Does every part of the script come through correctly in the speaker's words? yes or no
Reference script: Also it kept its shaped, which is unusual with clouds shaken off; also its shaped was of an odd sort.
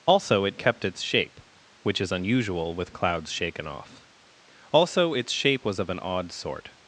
no